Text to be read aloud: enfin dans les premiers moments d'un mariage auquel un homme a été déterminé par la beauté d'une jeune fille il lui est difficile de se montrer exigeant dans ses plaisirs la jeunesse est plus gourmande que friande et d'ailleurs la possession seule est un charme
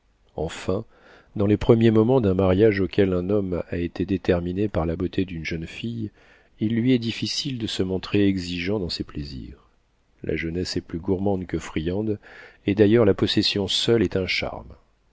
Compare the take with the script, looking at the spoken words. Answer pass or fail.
pass